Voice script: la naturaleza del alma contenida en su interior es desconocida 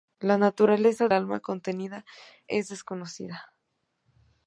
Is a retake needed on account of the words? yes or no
yes